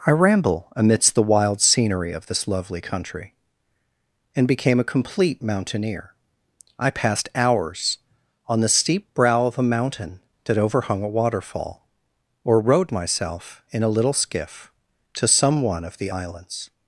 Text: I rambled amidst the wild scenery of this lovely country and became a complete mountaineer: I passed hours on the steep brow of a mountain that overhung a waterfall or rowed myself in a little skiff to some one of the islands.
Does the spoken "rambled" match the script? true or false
false